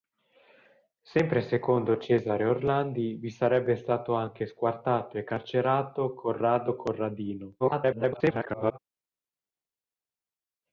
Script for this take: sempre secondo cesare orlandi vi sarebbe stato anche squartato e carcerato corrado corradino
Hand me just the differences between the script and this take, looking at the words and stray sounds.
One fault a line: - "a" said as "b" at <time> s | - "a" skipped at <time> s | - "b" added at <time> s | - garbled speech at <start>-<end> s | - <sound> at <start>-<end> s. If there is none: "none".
- garbled speech at 7.6-8.8 s